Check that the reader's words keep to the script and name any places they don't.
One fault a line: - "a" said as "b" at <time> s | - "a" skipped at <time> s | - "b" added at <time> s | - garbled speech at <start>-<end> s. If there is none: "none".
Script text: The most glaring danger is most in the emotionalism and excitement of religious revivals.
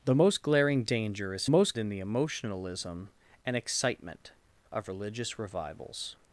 none